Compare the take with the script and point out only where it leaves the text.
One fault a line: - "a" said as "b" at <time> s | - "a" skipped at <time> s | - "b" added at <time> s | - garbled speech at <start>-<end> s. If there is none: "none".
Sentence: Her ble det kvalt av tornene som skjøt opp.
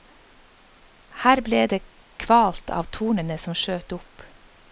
none